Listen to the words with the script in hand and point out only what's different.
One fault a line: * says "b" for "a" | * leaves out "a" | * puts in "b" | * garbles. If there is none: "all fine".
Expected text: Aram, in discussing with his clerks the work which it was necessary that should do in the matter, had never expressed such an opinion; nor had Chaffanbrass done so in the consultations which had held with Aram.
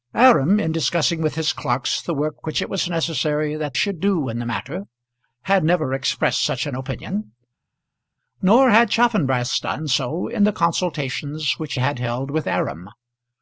all fine